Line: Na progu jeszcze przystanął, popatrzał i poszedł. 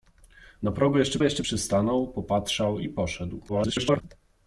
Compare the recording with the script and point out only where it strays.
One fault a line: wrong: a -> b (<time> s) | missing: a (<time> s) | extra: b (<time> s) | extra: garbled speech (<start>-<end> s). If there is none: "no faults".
extra: jeszcze (1.2 s)
extra: garbled speech (3.5-4.0 s)